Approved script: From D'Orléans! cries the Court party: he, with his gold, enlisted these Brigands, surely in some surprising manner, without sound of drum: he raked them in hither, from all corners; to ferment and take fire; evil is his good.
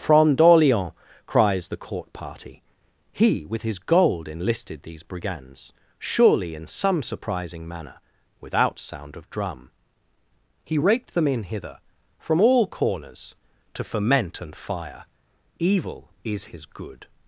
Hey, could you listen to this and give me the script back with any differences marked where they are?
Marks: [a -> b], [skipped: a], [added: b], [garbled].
From D'Orléans! cries the Court party: he, with his gold, enlisted these Brigands, surely in some surprising manner, without sound of drum: he raked them in hither, from all corners; to ferment and [skipped: take] fire; evil is his good.